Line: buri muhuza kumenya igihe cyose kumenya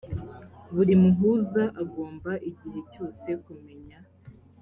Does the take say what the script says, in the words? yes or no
no